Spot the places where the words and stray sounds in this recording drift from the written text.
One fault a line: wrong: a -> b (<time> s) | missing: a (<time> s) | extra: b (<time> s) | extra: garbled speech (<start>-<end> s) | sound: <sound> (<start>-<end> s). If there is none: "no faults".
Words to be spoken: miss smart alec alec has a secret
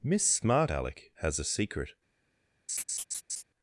missing: alec (1.1 s)
sound: laugh (2.7-3.4 s)